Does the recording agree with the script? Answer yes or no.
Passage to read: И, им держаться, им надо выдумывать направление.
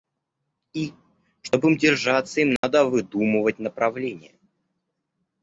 no